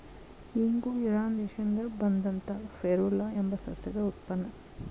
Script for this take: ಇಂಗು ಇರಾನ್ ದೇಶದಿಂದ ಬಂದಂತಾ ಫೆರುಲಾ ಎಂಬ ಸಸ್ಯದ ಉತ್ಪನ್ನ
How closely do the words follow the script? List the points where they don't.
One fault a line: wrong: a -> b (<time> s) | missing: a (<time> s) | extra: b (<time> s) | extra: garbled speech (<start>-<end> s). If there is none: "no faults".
no faults